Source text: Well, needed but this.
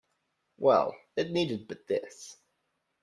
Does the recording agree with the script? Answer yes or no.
no